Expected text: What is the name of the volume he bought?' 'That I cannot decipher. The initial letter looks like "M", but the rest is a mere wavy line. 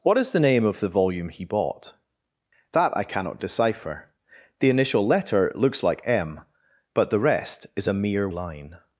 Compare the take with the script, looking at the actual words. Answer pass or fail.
fail